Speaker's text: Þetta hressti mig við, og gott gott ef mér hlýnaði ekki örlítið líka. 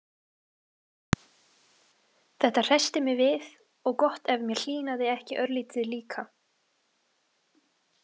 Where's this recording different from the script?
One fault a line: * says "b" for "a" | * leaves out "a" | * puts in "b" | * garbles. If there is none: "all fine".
* leaves out "gott"